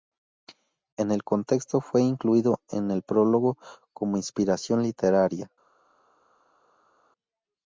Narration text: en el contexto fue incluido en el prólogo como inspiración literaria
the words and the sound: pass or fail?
pass